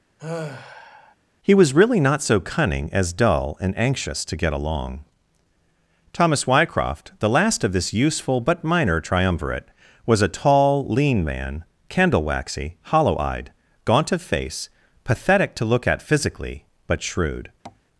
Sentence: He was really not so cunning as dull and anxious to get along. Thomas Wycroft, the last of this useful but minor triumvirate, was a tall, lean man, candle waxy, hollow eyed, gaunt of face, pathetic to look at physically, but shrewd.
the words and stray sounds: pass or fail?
fail